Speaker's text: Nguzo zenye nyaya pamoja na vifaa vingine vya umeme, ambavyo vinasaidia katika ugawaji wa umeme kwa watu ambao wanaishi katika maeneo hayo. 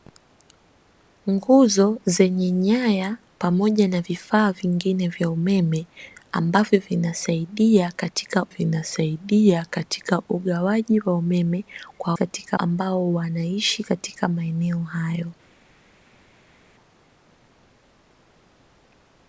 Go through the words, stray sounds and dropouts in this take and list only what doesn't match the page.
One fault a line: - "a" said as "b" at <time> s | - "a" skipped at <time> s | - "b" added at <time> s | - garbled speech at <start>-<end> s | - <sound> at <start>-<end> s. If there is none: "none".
- "vinasaidia katika" added at 8.5 s
- "watu" said as "katika" at 12.1 s